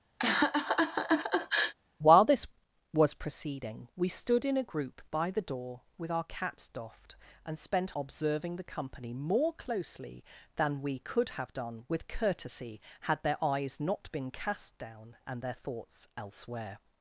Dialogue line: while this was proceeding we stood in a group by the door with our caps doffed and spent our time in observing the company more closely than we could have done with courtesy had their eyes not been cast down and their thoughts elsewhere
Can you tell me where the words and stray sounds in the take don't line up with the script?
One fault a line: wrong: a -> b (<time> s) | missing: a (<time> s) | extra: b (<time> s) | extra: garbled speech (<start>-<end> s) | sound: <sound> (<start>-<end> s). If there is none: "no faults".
sound: laugh (0.2-1.7 s)
missing: our time in (7.9 s)